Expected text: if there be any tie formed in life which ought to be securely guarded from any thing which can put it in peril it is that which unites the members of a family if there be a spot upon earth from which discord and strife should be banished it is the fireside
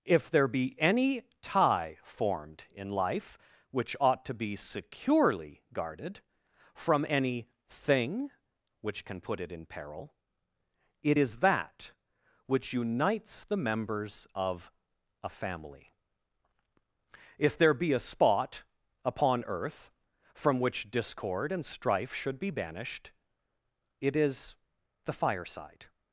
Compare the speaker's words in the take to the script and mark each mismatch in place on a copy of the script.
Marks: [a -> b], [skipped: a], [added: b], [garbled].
if there be any tie formed in life which ought to be securely guarded from any thing which can put it in peril it is that which unites the members of a family if there be a spot upon earth from which discord and strife should be banished it is the fireside